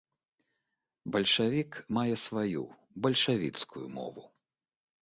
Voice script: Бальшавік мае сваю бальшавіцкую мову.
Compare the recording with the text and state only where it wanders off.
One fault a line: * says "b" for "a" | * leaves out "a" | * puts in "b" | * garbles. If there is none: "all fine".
all fine